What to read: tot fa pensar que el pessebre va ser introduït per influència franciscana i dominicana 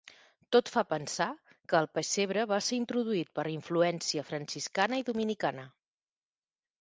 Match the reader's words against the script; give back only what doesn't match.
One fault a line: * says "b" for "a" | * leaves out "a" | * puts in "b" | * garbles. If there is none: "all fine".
all fine